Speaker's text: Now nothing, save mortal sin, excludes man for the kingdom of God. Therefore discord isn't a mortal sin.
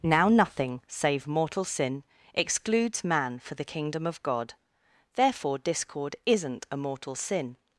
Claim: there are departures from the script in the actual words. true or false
false